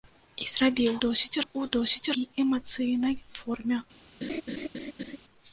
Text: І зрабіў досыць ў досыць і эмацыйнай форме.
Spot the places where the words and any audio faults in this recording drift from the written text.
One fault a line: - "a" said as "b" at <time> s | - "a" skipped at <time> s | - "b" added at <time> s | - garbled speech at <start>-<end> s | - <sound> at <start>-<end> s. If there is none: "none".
- laugh at 4.2-5.2 s